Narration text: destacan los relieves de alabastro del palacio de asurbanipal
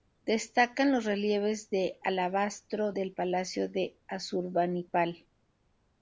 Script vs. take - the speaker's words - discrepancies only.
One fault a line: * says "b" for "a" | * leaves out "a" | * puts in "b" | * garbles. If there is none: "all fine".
all fine